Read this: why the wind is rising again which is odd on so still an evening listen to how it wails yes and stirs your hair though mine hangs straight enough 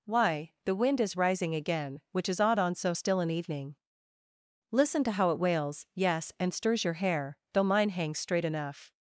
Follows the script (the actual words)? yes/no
yes